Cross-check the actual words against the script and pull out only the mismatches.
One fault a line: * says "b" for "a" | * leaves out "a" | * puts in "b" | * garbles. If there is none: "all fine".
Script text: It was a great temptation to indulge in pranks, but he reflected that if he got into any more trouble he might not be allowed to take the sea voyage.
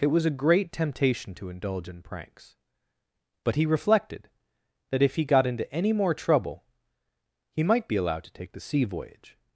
* leaves out "not"